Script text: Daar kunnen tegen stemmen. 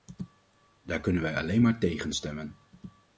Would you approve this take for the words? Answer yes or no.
no